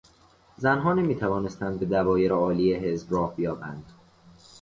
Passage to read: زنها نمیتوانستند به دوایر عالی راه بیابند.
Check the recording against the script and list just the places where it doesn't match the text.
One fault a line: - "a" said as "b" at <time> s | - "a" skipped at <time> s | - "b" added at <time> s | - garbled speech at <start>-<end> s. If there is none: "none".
- "حزب" added at 2.7 s